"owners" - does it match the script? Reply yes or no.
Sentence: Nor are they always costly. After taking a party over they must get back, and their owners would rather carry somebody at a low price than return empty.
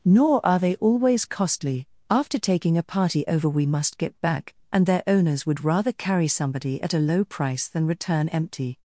yes